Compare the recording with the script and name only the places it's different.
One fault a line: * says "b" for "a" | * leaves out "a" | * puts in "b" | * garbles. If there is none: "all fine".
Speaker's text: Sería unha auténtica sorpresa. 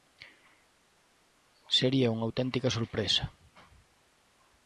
all fine